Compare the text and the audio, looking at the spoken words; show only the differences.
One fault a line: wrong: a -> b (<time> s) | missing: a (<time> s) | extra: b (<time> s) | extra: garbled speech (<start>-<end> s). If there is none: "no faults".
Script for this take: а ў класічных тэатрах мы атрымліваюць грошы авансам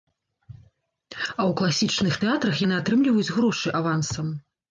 wrong: мы -> яны (2.6 s)